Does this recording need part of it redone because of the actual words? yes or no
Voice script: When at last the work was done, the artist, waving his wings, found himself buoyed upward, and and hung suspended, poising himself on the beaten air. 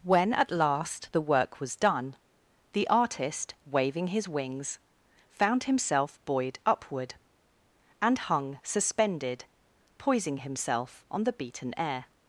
yes